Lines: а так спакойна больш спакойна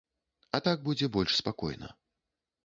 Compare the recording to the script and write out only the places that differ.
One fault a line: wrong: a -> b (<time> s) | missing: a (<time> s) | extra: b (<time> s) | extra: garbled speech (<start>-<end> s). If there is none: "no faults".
wrong: спакойна -> будзе (0.9 s)